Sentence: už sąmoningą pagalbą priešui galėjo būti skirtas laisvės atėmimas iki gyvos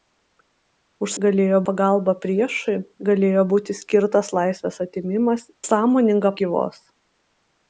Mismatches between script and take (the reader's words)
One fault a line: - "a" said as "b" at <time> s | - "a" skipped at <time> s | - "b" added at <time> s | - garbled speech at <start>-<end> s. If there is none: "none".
- "sąmoningą" said as "galėjo" at 1.2 s
- "iki" said as "sąmoningą" at 5.6 s